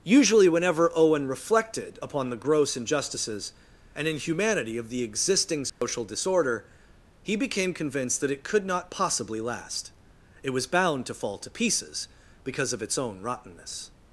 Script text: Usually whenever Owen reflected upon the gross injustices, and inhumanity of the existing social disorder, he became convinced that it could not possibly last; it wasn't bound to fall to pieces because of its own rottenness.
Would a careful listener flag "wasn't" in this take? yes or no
yes